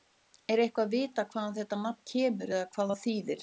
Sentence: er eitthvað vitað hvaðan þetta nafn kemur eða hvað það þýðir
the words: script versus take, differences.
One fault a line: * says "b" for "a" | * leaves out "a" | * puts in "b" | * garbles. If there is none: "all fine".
all fine